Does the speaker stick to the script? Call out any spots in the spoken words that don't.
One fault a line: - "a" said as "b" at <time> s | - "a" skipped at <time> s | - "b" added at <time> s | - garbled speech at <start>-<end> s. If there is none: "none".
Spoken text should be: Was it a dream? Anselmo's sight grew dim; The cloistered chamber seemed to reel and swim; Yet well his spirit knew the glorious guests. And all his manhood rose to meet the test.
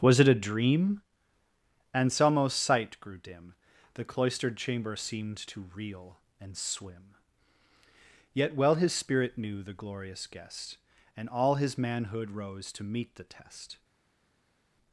- "guests" said as "guest" at 10.3 s